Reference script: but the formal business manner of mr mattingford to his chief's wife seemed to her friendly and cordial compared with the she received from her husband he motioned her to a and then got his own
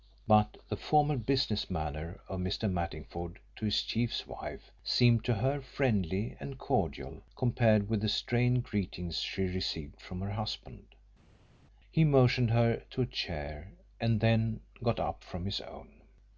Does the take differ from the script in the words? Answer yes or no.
yes